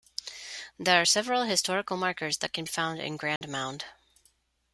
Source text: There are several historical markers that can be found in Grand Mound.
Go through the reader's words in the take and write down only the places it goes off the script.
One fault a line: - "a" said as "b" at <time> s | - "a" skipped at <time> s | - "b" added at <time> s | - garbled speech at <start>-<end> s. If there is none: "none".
- "be" skipped at 2.6 s